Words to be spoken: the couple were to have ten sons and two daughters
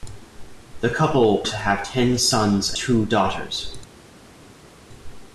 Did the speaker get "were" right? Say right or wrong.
wrong